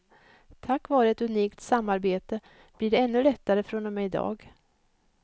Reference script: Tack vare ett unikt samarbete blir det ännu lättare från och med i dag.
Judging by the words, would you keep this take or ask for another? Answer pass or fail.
pass